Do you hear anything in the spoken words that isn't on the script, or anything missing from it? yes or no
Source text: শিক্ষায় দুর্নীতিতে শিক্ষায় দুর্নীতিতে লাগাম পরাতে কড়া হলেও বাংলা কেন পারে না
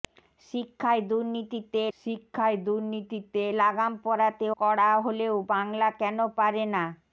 no